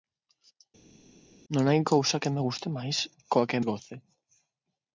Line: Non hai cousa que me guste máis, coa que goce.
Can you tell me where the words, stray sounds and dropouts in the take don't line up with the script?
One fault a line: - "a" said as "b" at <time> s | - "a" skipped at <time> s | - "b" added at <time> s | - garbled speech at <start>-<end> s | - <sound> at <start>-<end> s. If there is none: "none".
none